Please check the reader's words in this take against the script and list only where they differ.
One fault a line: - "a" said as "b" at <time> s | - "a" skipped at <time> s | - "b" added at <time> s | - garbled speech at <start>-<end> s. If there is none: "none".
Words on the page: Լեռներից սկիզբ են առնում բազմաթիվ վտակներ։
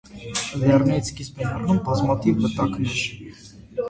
none